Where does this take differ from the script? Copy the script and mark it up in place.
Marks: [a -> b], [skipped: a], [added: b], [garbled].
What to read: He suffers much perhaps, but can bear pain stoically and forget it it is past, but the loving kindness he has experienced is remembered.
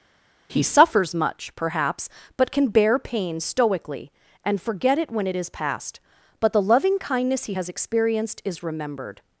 He suffers much perhaps, but can bear pain stoically and forget it [added: when] it is past, but the loving kindness he has experienced is remembered.